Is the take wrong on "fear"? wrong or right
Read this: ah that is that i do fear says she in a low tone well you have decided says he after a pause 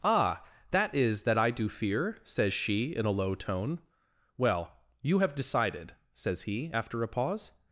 right